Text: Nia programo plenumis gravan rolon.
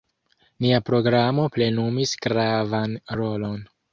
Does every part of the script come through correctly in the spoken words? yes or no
yes